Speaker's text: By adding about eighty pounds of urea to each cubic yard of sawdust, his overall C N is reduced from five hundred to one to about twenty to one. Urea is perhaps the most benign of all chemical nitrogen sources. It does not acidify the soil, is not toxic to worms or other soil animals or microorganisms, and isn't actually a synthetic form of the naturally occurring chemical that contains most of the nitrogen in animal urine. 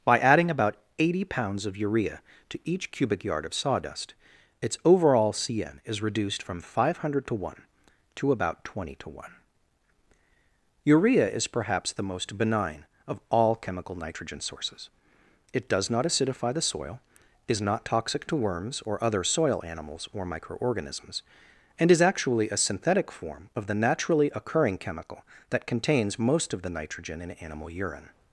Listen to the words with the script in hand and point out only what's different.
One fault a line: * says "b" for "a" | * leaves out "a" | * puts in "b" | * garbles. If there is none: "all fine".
* says "its" for "his"
* says "is" for "isn't"